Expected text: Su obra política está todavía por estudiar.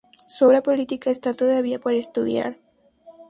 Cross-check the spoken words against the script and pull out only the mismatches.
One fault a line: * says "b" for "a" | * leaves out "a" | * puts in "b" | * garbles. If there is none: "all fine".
all fine